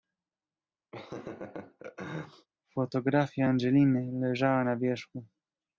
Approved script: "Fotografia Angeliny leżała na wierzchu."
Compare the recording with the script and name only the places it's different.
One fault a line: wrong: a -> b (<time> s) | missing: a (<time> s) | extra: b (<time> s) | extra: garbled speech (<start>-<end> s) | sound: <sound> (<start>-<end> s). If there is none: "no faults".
sound: laugh (0.9-2.5 s)